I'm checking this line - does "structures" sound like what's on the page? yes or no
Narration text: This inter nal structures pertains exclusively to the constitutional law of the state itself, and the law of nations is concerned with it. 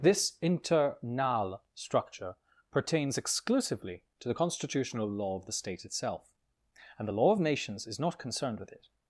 no